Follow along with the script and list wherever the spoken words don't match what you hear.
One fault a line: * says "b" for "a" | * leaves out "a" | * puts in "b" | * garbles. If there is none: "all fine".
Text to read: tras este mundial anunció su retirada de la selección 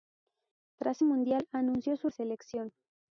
* leaves out "este"
* leaves out "retirada de la"